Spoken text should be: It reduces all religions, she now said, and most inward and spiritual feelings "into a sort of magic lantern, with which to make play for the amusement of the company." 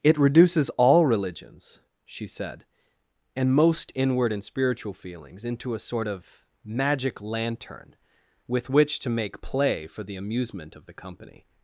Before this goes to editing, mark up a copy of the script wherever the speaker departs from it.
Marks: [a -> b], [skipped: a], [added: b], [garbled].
It reduces all religions, she [skipped: now] said, and most inward and spiritual feelings "into a sort of magic lantern, with which to make play for the amusement of the company."